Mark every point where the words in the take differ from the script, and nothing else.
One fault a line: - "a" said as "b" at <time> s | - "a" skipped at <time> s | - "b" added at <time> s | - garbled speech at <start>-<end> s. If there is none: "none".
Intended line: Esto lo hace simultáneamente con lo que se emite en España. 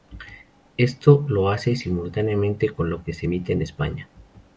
none